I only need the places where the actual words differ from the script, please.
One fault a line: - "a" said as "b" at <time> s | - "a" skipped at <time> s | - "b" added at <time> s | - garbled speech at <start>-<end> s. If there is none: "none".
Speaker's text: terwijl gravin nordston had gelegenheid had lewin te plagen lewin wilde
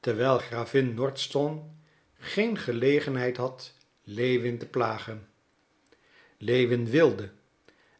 - "had" said as "geen" at 2.1 s